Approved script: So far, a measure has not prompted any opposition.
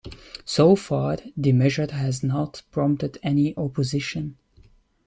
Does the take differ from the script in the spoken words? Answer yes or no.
yes